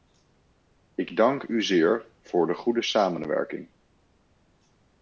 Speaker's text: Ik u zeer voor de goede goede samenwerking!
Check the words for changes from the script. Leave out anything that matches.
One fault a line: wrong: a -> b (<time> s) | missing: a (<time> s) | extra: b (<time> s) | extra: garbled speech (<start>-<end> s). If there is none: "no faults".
extra: dank (1.1 s)
missing: goede (2.8 s)